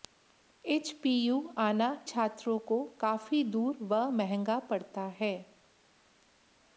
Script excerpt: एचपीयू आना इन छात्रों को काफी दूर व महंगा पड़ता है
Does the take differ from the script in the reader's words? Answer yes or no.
yes